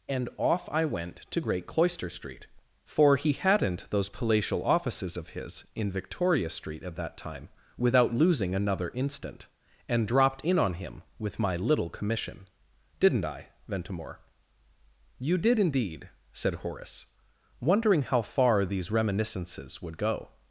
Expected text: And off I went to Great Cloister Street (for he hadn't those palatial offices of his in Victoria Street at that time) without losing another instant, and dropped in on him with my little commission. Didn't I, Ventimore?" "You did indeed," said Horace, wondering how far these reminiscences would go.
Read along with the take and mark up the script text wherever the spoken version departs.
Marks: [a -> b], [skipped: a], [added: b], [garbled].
And off I went to Great Cloister Street (for he hadn't those palatial offices of his in Victoria Street at that time) without losing another instant, and dropped in on him with my little commission. Didn't I, Ventimore?" "You did indeed," said Horace, wondering how far these reminiscences would go.